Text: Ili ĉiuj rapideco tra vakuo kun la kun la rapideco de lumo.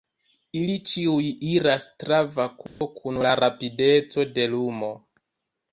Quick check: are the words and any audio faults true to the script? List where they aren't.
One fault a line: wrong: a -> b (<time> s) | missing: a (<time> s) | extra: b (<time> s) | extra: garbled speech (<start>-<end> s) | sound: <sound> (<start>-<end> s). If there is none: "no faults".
wrong: rapideco -> iras (1.5 s)
sound: dropout (2.7-2.8 s)
missing: kun la (3.4 s)